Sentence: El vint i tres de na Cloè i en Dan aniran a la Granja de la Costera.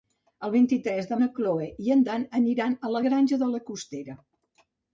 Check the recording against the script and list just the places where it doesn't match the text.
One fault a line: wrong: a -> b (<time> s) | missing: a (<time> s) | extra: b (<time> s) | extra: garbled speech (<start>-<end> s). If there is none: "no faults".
no faults